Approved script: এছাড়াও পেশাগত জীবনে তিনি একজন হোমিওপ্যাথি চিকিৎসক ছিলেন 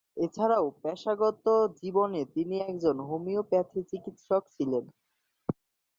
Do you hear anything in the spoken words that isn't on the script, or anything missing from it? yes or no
no